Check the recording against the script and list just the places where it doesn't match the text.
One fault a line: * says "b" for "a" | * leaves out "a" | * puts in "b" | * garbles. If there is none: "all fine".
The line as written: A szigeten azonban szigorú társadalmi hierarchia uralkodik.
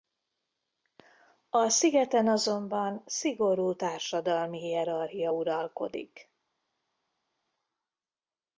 all fine